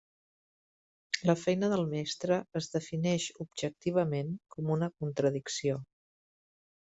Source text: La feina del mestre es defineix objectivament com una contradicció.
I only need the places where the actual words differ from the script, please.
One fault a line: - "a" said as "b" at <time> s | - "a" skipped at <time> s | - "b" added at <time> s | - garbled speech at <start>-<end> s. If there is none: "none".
none